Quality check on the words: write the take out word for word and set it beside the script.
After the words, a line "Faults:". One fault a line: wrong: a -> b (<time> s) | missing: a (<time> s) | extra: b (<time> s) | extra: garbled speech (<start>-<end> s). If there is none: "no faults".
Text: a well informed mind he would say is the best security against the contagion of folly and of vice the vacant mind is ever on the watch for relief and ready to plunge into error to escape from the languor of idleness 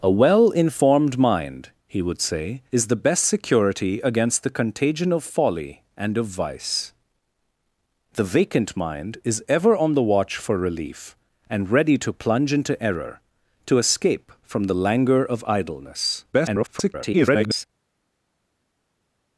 a well informed mind he would say is the best security against the contagion of folly and of vice the vacant mind is ever on the watch for relief and ready to plunge into error to escape from the languor of idleness [garbled]
Faults:
extra: garbled speech (16.3-17.7 s)